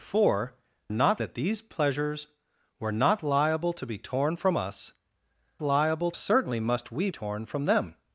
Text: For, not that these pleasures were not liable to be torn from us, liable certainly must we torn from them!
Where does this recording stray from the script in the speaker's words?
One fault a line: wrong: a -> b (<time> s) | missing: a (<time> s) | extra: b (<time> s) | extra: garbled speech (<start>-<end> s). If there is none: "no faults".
no faults